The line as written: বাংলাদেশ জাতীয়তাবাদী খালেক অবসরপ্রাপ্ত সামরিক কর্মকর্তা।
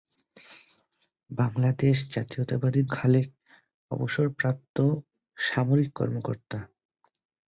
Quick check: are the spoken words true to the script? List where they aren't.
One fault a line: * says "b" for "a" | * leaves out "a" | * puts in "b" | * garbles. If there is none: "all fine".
all fine